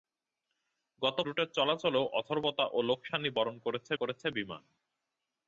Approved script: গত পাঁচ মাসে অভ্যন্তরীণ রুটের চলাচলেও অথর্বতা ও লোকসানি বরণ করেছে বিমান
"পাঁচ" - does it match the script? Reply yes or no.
no